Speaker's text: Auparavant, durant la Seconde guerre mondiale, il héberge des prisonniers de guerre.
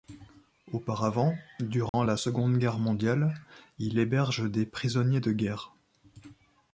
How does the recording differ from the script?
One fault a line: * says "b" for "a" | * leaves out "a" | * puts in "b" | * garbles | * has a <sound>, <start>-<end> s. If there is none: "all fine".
* has a dropout, 1.9-1.9 s